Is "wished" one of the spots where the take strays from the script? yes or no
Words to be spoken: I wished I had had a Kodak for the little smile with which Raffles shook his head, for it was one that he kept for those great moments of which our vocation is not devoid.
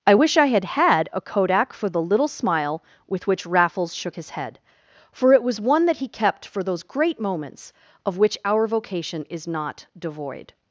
yes